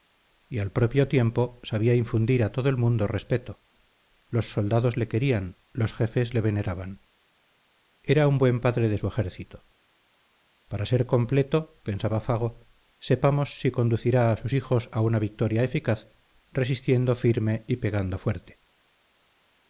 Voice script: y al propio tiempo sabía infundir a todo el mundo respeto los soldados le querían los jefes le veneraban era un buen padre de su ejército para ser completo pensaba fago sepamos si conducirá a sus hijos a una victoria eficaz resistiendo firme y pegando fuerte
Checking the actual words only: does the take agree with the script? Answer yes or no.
yes